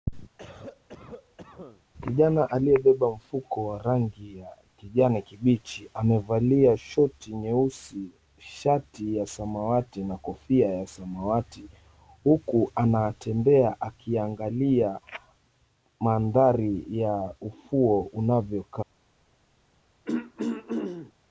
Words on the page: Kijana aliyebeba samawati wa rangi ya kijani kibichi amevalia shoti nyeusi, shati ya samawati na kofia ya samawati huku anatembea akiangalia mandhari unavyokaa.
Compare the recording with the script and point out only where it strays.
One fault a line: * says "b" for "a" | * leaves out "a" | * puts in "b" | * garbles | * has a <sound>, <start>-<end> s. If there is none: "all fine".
* has a cough, 0.4-1.8 s
* says "mfuko" for "samawati"
* puts in "ya ufuo"
* has a throat clearing, 20.1-21.1 s